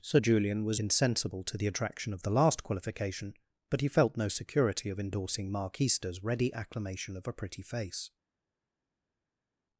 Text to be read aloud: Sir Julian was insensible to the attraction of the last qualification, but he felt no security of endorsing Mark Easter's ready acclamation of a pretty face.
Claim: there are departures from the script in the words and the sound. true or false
false